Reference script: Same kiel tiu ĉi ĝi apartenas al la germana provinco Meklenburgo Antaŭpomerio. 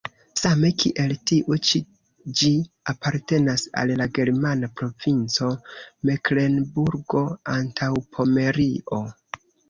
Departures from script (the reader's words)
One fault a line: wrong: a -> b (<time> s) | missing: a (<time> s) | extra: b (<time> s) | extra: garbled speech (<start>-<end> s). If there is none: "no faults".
no faults